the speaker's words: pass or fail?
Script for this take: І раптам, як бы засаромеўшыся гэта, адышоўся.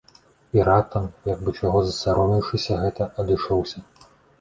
fail